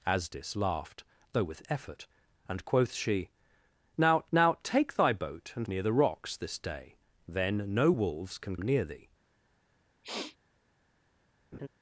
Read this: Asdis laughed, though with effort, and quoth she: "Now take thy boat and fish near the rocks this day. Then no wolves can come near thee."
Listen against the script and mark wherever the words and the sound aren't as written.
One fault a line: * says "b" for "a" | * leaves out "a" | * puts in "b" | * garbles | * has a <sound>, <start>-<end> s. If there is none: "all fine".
* puts in "now"
* leaves out "fish"
* leaves out "come"
* has a sniff, 10.0-10.4 s
* has a laugh, 11.5-11.7 s